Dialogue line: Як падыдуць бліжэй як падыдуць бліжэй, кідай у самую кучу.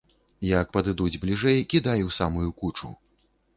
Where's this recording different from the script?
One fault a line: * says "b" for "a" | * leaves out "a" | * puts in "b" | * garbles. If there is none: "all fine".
* leaves out "як падыдуць бліжэй"